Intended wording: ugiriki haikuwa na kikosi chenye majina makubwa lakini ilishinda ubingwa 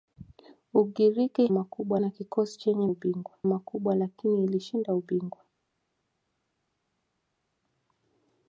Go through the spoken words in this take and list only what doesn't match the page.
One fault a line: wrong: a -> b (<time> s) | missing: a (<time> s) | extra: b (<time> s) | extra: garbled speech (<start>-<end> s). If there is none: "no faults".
wrong: haikuwa -> makubwa (1.5 s)
wrong: majina -> ubingwa (2.9 s)